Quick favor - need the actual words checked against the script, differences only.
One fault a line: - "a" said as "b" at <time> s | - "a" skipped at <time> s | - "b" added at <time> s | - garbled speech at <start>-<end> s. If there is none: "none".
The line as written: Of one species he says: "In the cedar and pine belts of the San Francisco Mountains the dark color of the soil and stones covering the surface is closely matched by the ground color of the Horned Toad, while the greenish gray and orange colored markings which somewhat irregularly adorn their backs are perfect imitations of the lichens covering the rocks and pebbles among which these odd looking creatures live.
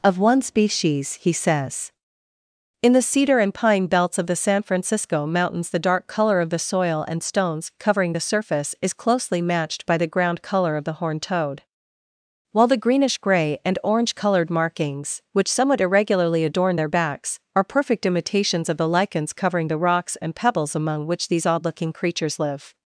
none